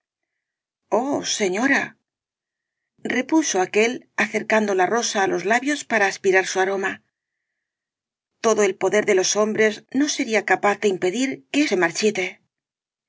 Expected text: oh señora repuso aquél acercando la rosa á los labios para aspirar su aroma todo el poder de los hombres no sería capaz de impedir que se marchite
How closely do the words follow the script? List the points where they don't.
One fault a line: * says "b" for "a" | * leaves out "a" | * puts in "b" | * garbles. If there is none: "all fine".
all fine